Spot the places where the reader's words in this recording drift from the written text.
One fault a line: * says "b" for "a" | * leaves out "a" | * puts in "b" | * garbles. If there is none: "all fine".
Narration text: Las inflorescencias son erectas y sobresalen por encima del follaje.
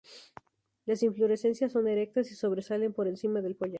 all fine